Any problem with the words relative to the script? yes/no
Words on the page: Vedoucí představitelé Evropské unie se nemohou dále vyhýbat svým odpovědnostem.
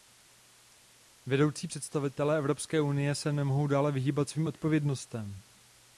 no